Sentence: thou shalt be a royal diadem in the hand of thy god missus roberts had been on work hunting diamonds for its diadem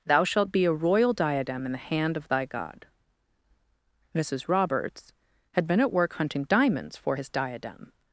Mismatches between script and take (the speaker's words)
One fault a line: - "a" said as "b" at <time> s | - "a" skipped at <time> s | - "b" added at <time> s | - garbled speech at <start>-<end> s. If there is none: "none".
- "on" said as "at" at 5.8 s
- "its" said as "his" at 7.1 s